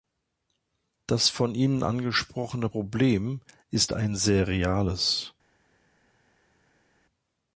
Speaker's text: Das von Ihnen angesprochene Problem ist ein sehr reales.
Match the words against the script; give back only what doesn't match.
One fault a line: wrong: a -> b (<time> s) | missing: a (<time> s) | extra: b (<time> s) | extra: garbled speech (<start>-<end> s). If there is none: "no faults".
no faults